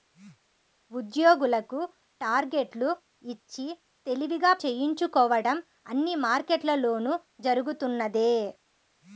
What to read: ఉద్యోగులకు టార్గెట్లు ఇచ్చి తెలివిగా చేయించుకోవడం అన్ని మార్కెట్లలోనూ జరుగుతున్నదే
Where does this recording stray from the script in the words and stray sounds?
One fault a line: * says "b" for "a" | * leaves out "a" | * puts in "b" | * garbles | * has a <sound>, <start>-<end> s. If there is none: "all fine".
all fine